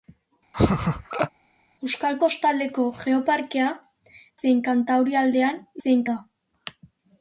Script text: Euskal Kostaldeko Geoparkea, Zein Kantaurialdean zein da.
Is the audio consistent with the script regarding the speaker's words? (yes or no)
yes